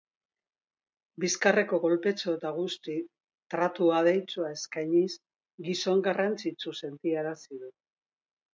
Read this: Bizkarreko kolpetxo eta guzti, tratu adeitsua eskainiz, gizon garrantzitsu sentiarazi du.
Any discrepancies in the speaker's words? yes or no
no